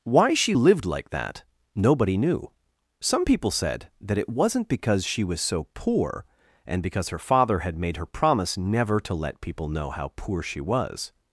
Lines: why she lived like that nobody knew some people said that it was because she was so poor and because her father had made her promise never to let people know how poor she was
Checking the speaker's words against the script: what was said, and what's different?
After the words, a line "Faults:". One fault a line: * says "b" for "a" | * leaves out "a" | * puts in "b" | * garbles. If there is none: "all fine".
why she lived like that nobody knew some people said that it wasn't because she was so poor and because her father had made her promise never to let people know how poor she was
Faults:
* says "wasn't" for "was"